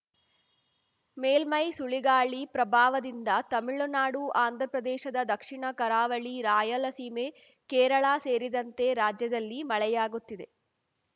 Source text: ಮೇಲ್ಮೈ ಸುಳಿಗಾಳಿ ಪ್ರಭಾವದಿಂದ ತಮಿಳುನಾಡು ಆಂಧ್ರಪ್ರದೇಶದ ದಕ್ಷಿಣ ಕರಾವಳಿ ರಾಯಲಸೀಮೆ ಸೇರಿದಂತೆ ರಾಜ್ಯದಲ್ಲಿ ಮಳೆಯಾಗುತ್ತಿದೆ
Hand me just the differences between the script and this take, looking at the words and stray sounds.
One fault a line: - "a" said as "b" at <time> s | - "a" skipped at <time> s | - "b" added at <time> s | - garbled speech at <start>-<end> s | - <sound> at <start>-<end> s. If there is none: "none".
- "ಕೇರಳ" added at 7.7 s